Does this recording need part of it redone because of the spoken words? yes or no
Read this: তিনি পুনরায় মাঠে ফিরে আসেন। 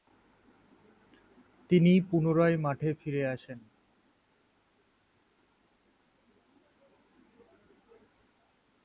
no